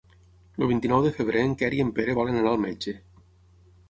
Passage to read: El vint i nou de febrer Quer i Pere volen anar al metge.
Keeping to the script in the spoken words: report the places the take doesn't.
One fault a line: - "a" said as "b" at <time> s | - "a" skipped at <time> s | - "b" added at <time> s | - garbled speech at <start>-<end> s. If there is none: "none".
- "en" added at 1.5 s
- "en" added at 1.8 s